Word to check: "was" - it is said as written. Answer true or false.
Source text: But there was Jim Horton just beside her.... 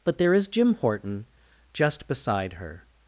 false